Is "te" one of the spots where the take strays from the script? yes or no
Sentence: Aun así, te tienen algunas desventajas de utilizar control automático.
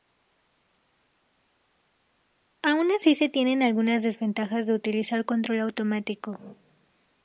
yes